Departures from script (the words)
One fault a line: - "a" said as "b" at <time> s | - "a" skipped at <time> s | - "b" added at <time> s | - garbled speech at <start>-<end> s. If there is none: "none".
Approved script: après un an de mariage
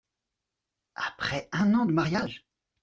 none